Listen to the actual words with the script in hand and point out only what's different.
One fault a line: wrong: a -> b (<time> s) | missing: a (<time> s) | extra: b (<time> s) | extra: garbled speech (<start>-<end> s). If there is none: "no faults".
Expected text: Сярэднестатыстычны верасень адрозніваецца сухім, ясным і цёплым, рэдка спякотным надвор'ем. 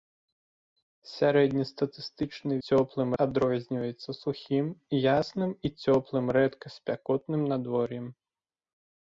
wrong: верасень -> цёплым (2.7 s)